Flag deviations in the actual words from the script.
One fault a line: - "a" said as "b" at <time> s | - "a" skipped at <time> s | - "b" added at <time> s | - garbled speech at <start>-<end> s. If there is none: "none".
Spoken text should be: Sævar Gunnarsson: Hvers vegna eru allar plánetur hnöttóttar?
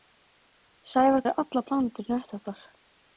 - "Gunnarsson Hvers vegna" skipped at 1.2 s